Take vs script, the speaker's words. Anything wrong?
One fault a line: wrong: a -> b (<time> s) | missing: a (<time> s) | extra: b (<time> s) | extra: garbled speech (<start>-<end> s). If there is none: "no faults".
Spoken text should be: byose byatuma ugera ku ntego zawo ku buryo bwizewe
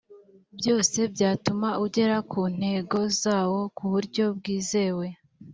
no faults